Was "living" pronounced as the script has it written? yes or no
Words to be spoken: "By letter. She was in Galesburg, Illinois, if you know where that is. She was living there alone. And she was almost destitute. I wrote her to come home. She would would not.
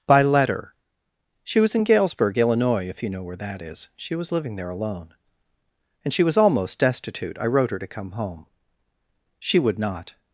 yes